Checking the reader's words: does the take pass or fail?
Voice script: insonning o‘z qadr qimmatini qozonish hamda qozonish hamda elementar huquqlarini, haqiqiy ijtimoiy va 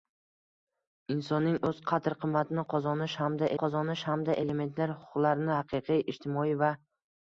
pass